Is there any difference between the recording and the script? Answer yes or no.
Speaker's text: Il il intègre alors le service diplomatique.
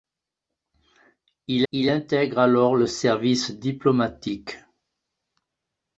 no